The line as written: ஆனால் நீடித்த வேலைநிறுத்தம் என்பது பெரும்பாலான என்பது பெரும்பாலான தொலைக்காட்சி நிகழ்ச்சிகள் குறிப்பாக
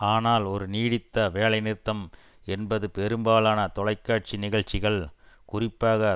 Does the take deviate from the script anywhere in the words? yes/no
yes